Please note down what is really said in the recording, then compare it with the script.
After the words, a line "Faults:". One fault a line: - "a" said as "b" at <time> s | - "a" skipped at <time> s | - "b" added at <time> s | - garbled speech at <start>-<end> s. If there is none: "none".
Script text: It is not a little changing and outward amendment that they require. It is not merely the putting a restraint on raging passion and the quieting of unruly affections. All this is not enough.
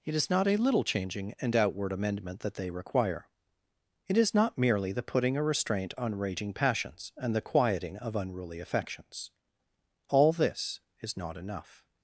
It is not a little changing and outward amendment that they require. It is not merely the putting a restraint on raging passions and the quieting of unruly affections. All this is not enough.
Faults:
- "passion" said as "passions" at 6.5 s